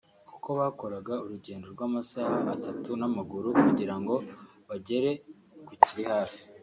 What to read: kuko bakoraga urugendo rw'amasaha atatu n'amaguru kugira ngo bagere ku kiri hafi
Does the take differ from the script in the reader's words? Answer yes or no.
no